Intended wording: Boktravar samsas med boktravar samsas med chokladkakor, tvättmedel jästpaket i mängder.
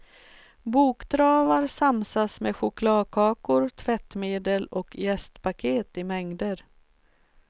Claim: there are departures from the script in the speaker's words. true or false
true